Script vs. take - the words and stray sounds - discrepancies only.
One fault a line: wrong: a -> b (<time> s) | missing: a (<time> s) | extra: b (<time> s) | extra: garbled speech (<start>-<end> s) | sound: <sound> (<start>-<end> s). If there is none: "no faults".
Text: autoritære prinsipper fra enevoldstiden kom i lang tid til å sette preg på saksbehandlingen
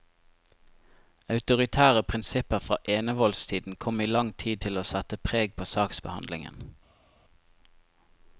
no faults